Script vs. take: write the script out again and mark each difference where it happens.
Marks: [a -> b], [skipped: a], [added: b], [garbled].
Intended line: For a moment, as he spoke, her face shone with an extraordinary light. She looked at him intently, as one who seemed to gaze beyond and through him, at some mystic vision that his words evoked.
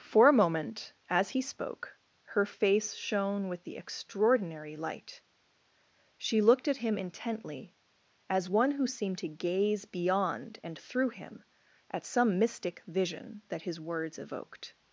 For a moment, as he spoke, her face shone with [an -> the] extraordinary light. She looked at him intently, as one who seemed to gaze beyond and through him, at some mystic vision that his words evoked.